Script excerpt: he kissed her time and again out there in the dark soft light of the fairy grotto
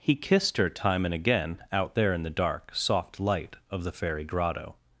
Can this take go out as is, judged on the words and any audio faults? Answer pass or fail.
pass